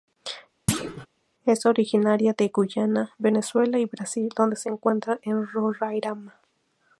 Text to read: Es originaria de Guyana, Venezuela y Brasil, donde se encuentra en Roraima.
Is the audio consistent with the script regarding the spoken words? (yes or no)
yes